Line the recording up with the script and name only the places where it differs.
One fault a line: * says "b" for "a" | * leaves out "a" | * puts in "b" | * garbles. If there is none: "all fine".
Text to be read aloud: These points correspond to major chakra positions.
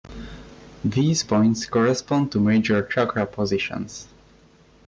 all fine